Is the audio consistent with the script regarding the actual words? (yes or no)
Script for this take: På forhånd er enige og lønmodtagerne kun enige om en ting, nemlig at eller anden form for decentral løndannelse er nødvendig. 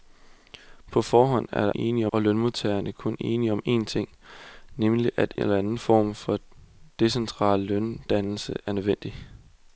yes